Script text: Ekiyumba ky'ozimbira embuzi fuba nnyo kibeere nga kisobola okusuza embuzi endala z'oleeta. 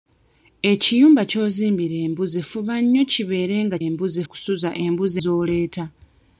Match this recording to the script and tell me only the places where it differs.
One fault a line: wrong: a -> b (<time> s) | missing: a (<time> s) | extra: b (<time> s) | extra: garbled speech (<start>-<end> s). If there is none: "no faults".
wrong: kisobola -> embuzi (3.9 s)
missing: endala (5.2 s)